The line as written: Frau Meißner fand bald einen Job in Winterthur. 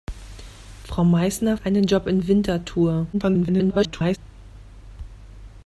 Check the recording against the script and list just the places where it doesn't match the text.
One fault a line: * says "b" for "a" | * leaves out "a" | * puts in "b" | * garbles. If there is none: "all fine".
* leaves out "fand bald"
* garbles